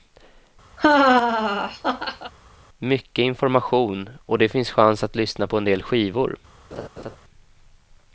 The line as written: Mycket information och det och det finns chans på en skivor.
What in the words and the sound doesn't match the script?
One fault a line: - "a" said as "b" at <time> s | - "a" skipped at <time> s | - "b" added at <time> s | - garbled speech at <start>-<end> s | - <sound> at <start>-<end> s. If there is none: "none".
- laugh at 0.8-2.3 s
- "och det finns chans" said as "finns chans att lyssna" at 4.5 s
- "del" added at 5.6 s
- laugh at 6.7-7.2 s